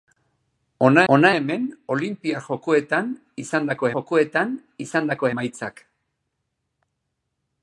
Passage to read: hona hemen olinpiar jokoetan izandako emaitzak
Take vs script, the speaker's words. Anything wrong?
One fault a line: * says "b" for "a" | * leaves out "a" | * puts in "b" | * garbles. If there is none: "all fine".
* puts in "hona"
* puts in "jokoetan izandako"